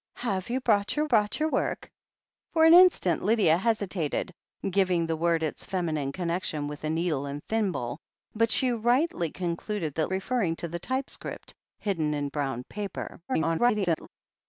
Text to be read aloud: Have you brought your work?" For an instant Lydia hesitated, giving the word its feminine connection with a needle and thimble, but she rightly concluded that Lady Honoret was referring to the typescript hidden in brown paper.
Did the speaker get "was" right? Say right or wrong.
wrong